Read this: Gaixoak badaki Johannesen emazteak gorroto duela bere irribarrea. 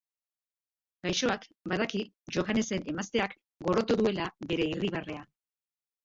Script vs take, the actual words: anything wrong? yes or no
no